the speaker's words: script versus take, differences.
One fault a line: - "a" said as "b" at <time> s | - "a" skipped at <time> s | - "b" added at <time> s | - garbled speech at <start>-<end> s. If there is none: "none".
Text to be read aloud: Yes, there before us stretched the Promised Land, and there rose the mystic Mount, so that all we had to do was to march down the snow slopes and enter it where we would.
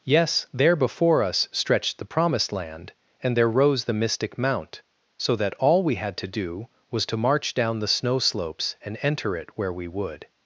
none